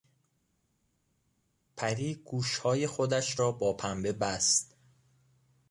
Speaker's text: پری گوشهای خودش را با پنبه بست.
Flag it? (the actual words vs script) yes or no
no